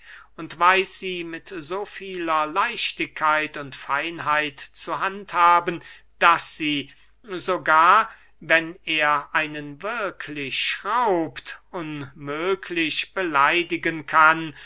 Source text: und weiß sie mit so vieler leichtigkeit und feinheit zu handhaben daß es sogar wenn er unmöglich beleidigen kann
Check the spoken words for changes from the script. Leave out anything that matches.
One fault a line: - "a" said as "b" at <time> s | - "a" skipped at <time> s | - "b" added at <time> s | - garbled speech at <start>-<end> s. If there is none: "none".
- "es" said as "sie" at 6.6 s
- "einen wirklich schraubt" added at 9.3 s